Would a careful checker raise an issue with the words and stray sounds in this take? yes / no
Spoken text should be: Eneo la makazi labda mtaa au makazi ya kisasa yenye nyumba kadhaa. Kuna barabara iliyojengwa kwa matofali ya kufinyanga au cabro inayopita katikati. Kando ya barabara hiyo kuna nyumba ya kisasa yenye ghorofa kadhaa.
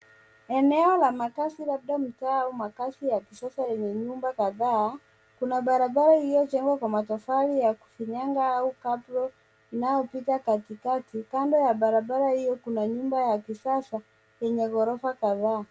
no